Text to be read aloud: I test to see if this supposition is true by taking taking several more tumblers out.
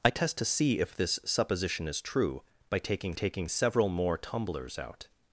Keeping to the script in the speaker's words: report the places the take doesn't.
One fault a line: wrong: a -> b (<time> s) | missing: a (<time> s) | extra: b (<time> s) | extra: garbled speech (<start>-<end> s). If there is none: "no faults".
no faults